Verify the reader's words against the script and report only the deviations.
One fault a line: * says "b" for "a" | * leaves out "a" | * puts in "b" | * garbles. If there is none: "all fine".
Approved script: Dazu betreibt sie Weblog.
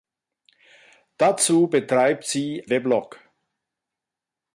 all fine